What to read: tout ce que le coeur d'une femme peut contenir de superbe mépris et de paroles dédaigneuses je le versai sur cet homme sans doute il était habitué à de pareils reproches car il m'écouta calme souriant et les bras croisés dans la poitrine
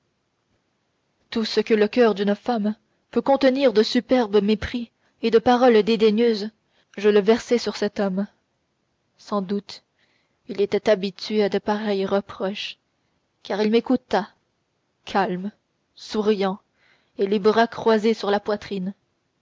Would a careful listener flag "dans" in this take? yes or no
yes